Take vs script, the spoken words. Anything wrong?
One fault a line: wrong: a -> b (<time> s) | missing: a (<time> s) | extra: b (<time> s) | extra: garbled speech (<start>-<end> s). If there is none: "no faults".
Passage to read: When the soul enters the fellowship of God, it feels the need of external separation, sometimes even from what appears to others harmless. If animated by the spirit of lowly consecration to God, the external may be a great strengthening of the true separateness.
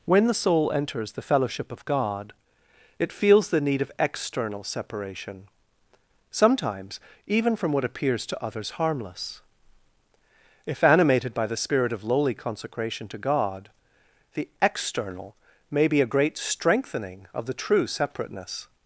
no faults